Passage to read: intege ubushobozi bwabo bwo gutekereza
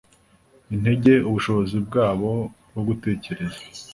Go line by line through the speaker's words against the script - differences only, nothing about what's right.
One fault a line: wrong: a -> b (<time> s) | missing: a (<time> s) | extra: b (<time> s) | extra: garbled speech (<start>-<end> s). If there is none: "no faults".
no faults